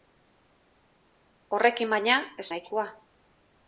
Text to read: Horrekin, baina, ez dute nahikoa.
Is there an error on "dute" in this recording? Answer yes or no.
yes